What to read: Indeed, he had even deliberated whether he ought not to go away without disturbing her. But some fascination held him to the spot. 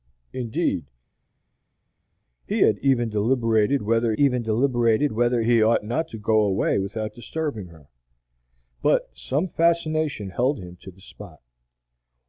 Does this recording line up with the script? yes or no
no